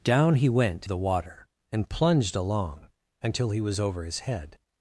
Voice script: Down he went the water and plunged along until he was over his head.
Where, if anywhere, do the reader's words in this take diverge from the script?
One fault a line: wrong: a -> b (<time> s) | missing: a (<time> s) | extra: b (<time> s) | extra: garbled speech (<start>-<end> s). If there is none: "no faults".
no faults